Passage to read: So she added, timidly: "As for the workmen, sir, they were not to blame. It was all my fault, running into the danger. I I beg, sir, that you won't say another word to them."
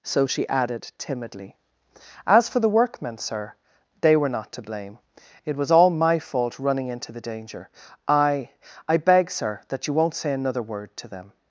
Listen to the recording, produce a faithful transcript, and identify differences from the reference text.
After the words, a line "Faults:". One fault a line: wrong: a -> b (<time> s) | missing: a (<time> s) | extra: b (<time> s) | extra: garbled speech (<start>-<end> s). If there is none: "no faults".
So she added, timidly: "As for the workmen, sir, they were not to blame. It was all my fault, running into the danger. I I beg, sir, that you won't say another word to them."
Faults:
no faults